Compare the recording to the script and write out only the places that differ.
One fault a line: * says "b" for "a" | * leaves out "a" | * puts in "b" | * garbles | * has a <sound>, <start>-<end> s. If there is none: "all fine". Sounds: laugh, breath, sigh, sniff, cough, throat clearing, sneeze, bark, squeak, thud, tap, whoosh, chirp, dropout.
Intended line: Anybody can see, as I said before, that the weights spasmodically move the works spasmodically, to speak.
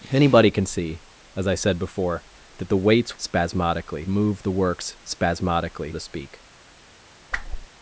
* has a whoosh, 7.3-7.7 s